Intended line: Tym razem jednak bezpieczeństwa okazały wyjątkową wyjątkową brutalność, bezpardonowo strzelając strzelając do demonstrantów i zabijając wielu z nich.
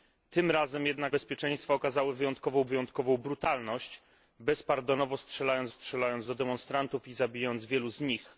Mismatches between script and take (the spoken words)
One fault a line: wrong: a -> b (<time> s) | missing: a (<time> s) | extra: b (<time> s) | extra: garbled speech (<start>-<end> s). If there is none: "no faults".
no faults